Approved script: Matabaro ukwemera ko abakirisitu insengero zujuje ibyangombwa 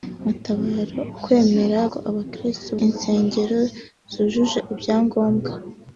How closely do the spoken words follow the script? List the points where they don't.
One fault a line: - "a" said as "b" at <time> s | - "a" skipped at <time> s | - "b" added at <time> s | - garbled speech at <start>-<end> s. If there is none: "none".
none